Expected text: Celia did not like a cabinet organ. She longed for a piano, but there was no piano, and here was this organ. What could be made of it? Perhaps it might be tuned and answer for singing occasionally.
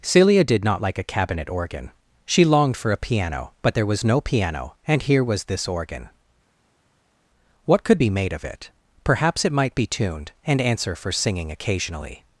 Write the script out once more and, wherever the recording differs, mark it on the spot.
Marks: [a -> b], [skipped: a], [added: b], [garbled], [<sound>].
Celia did not like a cabinet organ. She longed for a piano, but there was no piano, and here was this organ. What could be made of it? Perhaps it might be tuned and answer for singing occasionally.